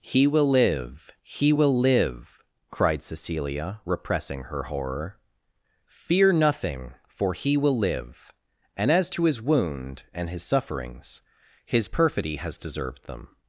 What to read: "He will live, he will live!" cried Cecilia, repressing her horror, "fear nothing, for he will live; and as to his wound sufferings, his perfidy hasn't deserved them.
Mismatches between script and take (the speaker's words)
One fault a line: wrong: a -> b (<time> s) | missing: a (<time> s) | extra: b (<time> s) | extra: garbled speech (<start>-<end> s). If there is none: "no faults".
extra: and his (10.1 s)
wrong: hasn't -> has (12.4 s)